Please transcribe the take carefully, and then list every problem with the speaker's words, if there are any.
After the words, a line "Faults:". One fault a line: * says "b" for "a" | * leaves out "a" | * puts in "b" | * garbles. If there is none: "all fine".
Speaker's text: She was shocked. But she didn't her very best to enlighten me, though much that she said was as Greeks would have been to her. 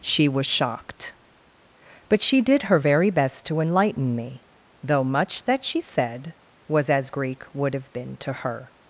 She was shocked. But she did her very best to enlighten me, though much that she said was as Greek would have been to her.
Faults:
* says "did" for "didn't"
* says "Greek" for "Greeks"